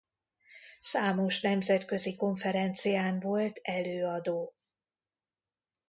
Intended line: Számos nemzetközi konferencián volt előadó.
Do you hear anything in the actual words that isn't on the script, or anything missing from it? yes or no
no